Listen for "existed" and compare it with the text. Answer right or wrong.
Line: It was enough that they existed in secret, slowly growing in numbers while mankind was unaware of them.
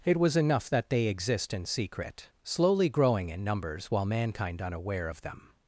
wrong